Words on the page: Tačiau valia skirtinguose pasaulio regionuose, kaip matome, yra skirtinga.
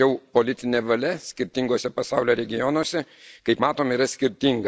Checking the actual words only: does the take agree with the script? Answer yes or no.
no